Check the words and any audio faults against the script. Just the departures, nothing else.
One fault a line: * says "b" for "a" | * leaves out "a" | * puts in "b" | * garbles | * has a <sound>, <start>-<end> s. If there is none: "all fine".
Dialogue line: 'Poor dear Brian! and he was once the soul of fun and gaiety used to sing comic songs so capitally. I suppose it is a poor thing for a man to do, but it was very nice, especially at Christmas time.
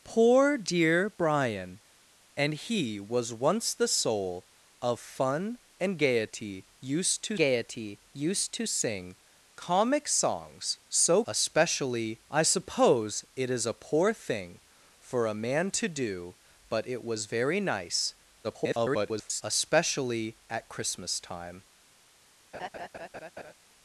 * puts in "gaiety used to"
* says "especially" for "capitally"
* garbles
* has a laugh, 22.5-23.5 s